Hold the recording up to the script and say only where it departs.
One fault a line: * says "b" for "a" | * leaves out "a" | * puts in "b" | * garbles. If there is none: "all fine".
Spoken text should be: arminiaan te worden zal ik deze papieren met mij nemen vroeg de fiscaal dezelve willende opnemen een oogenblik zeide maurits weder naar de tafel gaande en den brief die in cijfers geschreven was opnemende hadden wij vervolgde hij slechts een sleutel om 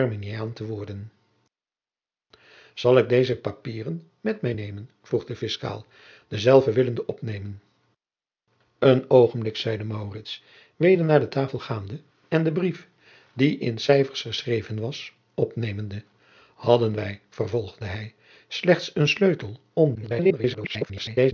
* garbles